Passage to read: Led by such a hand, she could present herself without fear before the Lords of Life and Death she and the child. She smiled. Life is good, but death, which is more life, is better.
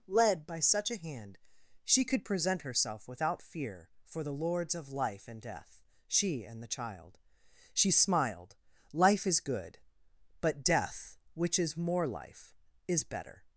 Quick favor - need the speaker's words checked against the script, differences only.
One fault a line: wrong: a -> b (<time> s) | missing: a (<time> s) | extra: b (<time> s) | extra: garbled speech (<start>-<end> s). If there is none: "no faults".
wrong: before -> for (4.0 s)